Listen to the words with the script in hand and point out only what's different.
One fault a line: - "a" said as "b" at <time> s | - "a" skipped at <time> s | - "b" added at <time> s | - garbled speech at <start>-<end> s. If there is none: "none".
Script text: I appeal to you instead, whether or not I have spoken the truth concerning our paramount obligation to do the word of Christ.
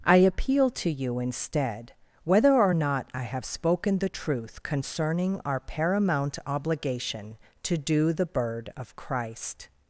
- "word" said as "bird" at 8.3 s